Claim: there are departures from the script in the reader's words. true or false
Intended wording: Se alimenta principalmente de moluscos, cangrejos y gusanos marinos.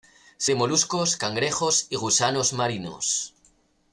true